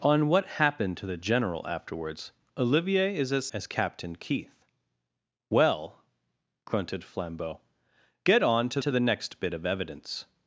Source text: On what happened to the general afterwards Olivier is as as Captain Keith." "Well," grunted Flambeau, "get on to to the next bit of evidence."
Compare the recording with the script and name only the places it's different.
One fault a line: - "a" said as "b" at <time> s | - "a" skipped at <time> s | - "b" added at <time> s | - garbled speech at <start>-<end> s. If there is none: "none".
none